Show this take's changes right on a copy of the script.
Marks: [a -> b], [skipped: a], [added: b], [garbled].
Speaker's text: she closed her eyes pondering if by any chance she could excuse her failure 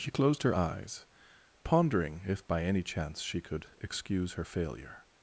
she closed her eyes pondering if by any chance she could excuse her failure